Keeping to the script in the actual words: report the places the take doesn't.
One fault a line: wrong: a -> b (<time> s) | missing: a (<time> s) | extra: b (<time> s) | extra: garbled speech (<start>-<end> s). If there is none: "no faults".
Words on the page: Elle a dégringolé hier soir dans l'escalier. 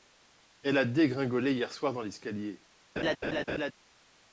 no faults